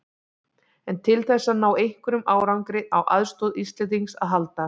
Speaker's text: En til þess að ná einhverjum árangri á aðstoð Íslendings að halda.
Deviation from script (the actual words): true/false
false